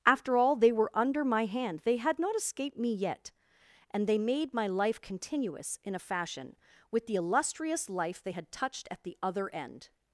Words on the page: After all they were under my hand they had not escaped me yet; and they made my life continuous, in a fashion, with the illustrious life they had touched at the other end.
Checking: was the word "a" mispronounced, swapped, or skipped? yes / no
no